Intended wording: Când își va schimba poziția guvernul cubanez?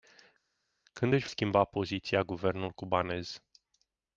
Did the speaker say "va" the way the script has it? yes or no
no